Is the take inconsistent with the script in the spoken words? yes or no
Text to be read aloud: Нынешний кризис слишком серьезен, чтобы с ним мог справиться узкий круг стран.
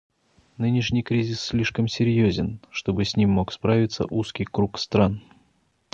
no